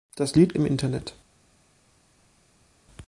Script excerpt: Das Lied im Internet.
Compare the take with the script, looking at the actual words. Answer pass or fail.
pass